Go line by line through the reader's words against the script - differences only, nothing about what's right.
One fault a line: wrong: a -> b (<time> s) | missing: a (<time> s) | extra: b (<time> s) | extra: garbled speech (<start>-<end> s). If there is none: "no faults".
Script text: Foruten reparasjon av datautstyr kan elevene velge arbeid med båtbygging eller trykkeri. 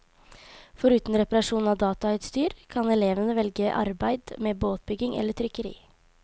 no faults